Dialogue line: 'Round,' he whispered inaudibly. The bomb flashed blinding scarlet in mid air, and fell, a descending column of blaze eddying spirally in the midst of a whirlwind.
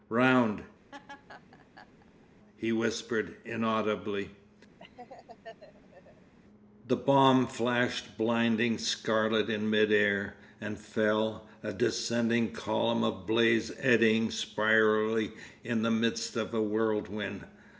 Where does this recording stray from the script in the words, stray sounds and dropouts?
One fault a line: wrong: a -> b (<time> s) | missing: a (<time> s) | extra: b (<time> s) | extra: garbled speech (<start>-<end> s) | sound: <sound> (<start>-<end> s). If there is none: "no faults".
sound: laugh (0.9-2.3 s)
sound: laugh (4.8-6.3 s)